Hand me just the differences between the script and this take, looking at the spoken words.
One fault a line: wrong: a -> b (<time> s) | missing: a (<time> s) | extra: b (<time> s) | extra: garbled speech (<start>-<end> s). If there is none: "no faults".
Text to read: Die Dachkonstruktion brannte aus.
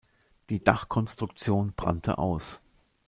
no faults